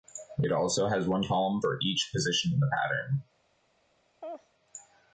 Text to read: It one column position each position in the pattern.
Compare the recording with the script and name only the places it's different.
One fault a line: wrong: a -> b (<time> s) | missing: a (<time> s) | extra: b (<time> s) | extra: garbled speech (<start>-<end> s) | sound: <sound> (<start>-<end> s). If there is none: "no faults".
extra: also has (0.5 s)
wrong: position -> for (1.6 s)
sound: laugh (4.2-4.5 s)